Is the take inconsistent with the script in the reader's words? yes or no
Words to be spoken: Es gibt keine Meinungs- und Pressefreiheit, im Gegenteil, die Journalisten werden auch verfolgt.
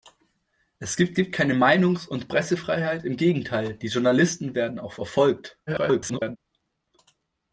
yes